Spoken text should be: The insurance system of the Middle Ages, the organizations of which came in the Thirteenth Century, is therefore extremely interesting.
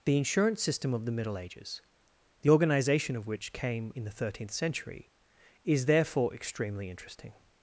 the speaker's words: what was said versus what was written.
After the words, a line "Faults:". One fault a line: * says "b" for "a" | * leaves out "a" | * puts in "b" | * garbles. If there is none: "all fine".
The insurance system of the Middle Ages, the organization of which came in the Thirteenth Century, is therefore extremely interesting.
Faults:
* says "organization" for "organizations"